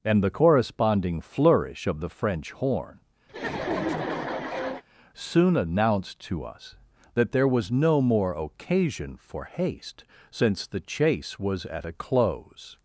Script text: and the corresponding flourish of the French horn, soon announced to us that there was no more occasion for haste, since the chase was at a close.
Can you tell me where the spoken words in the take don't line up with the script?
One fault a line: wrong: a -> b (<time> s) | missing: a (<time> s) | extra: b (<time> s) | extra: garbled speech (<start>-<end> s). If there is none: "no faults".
no faults